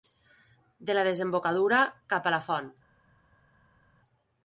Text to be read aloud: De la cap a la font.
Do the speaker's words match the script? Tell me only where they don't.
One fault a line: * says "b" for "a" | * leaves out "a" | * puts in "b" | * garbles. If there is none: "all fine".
* puts in "desembocadura"